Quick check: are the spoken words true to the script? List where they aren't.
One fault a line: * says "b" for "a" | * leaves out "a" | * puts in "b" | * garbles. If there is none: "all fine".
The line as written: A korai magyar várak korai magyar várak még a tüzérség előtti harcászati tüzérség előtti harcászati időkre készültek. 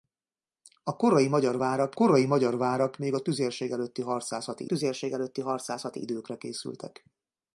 all fine